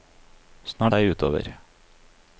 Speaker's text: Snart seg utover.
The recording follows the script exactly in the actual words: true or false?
true